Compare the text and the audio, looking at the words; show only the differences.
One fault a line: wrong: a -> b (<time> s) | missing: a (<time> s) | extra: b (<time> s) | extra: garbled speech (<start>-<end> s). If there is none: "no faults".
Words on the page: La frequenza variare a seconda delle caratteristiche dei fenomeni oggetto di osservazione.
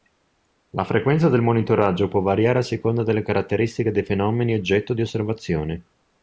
extra: del monitoraggio può (1.3 s)